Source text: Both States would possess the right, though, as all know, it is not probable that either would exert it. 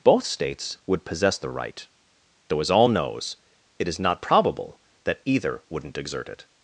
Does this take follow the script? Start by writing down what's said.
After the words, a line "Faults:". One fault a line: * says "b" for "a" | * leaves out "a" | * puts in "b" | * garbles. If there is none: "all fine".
Both States would possess the right, though, as all knows, it is not probable that either wouldn't exert it.
Faults:
* says "knows" for "know"
* says "wouldn't" for "would"